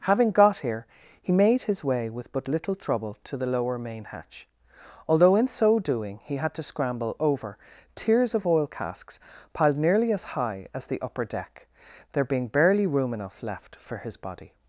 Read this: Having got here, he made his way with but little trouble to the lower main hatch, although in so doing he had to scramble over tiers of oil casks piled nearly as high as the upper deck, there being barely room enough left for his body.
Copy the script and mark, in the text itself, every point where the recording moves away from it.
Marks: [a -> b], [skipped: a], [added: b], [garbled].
Having got here, he made his way with but little trouble to the lower main hatch, although in so doing he had to scramble over tiers of oil casks piled nearly as high as the upper deck, there being barely room enough left for his body.